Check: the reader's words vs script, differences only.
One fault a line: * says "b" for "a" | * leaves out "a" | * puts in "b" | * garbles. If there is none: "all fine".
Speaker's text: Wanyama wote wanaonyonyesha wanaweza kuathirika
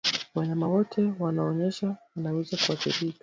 all fine